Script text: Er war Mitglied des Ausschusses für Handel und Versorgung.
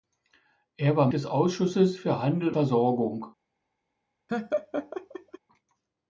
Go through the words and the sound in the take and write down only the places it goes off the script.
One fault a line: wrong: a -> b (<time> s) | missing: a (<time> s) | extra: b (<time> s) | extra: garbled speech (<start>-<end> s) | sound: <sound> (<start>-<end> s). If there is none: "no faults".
missing: Mitglied (1.1 s)
missing: und (2.6 s)
sound: laugh (4.3-5.4 s)